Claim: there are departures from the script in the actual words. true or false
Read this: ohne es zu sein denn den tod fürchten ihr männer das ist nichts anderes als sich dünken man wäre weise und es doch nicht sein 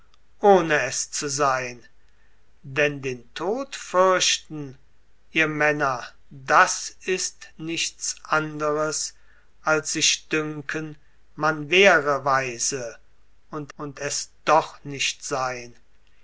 true